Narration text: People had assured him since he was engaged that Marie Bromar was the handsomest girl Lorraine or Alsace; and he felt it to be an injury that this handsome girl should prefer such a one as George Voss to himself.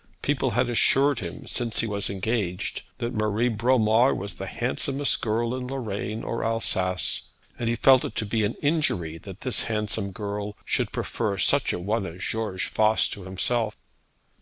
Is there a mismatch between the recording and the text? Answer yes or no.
yes